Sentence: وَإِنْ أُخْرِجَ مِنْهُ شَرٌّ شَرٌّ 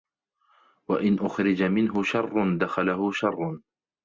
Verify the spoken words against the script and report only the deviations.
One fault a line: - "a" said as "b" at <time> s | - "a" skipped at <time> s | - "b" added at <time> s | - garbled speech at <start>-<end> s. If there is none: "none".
- "دَخَلَهُ" added at 2.6 s